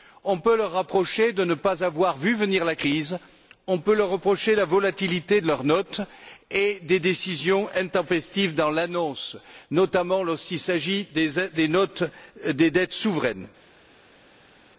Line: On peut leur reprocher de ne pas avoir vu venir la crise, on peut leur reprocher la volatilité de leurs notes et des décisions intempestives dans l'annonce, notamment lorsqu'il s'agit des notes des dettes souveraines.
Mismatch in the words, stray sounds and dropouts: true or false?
false